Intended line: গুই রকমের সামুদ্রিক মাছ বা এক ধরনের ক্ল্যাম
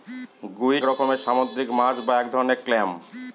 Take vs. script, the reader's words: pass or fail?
pass